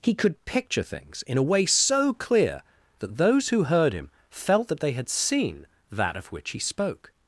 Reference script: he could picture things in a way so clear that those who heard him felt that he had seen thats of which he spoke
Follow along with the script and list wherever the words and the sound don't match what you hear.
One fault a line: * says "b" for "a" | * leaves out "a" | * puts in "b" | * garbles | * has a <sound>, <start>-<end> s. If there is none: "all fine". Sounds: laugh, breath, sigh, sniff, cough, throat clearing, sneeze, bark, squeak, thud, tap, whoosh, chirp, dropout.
* says "they" for "he"
* says "that" for "thats"